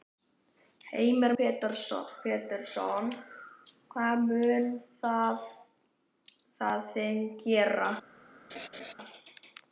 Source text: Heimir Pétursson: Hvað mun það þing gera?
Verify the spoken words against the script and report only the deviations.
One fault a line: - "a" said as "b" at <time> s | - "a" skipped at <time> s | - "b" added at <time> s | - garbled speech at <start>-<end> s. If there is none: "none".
none